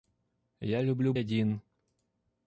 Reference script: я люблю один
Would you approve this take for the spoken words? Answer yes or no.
yes